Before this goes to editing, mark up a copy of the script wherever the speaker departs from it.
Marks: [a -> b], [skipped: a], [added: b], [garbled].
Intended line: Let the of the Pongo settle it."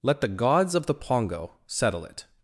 Let the [added: gods] of the Pongo settle it."